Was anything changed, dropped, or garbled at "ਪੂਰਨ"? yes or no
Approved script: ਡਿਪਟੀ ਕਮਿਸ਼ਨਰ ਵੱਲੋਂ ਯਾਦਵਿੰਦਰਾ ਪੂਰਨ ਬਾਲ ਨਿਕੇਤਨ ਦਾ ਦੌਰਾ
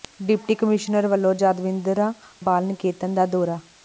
yes